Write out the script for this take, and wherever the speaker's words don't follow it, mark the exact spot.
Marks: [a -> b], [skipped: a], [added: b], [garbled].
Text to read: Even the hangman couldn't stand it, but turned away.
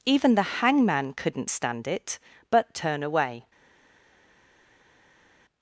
Even the hangman couldn't stand it, but [turned -> turn] away.